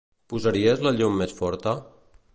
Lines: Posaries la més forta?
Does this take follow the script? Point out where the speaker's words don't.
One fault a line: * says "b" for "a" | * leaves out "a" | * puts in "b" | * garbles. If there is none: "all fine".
* puts in "llum"